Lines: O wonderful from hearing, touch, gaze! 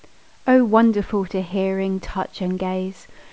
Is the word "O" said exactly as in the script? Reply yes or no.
yes